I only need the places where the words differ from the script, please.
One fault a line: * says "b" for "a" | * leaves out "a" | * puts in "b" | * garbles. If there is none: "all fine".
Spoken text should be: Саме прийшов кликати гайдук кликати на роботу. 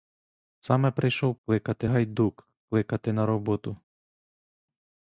all fine